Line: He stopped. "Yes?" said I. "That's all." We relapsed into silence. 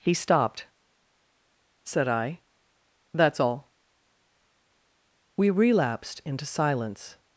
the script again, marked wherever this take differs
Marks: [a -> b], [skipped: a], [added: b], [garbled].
He stopped. [skipped: "Yes?"] said I. "That's all." We relapsed into silence.